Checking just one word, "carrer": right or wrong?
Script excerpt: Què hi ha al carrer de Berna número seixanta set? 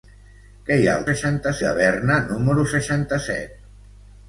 wrong